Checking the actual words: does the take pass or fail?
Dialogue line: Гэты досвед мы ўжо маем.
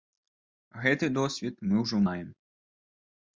pass